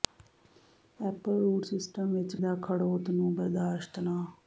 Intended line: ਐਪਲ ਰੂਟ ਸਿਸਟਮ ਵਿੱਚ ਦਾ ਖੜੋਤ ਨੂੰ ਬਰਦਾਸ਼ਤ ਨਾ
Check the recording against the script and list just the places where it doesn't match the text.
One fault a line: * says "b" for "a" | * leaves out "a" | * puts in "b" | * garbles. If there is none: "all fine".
all fine